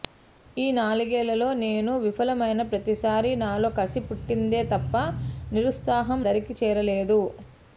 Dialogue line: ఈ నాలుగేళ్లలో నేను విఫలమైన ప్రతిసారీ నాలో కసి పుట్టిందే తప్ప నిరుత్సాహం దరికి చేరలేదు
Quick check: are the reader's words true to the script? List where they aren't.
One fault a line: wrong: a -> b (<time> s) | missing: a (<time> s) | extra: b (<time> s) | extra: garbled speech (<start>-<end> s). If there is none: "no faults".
no faults